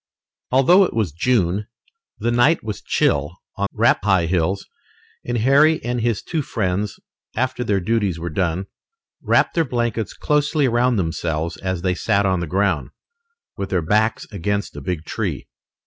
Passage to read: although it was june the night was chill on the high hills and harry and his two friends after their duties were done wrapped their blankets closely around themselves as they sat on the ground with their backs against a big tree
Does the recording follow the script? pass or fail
fail